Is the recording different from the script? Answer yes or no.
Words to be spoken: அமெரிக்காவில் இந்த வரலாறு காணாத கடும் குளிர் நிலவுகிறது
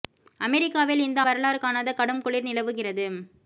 no